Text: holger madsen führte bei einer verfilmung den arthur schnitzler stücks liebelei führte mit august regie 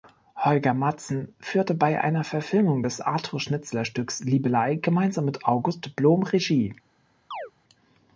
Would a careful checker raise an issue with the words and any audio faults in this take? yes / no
yes